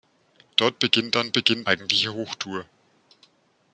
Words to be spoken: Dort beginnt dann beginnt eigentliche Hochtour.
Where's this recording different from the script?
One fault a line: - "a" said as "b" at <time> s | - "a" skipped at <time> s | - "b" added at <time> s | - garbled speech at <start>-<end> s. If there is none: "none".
none